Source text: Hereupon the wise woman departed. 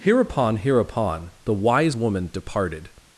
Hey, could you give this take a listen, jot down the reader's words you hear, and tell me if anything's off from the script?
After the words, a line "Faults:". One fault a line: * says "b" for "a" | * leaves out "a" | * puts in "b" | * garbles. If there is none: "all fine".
Hereupon hereupon the wise woman departed.
Faults:
* puts in "hereupon"